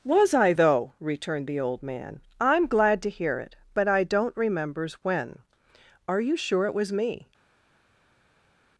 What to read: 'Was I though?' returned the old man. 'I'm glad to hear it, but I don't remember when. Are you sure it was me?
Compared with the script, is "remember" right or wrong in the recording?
wrong